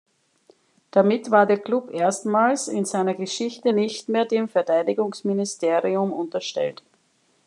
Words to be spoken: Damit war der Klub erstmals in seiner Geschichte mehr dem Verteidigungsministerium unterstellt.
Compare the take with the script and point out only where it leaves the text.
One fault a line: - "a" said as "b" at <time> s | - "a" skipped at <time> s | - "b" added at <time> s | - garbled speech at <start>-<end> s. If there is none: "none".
- "nicht" added at 3.7 s